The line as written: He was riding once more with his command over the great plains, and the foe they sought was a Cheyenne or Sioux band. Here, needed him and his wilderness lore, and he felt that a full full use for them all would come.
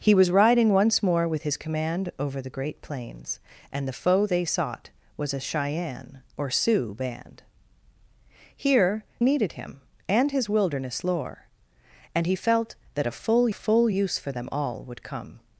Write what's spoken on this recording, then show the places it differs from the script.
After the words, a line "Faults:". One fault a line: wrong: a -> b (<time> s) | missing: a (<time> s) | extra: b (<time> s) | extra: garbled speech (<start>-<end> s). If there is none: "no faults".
He was riding once more with his command over the great plains, and the foe they sought was a Cheyenne or Sioux band. Here, needed him and his wilderness lore, and he felt that a full full use for them all would come.
Faults:
no faults